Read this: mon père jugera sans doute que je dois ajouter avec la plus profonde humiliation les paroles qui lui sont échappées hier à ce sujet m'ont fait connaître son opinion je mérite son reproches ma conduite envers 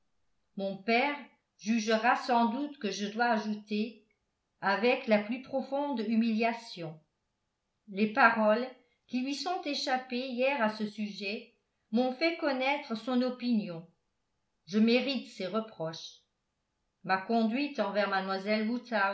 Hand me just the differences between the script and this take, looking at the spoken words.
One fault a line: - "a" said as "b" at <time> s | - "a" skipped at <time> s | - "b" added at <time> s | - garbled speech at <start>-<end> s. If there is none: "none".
- "son" said as "ses" at 15.3 s